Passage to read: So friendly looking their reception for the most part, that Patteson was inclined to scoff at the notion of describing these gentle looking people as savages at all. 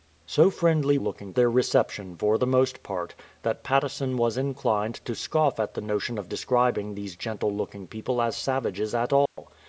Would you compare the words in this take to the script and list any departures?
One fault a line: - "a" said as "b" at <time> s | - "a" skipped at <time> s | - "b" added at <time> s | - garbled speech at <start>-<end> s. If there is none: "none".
none